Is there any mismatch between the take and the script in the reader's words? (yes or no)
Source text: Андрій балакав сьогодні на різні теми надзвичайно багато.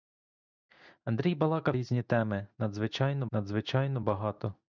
yes